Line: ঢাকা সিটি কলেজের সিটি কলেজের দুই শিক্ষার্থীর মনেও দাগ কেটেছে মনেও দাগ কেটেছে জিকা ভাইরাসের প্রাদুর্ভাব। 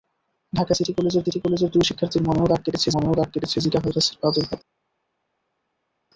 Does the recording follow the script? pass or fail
pass